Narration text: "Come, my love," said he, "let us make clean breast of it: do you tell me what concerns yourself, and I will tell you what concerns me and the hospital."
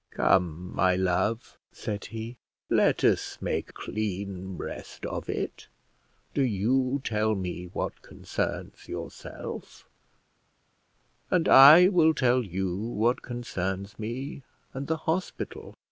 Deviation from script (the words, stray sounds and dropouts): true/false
false